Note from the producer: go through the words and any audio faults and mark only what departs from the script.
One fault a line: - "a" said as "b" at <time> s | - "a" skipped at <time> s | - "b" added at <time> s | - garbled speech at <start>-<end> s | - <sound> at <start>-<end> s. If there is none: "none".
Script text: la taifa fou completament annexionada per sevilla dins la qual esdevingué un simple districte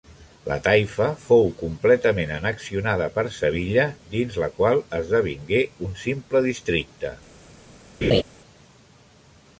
- laugh at 8.0-8.2 s